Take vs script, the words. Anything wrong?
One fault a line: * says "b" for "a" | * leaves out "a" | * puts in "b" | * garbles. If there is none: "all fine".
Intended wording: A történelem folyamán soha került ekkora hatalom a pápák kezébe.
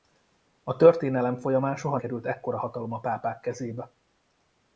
all fine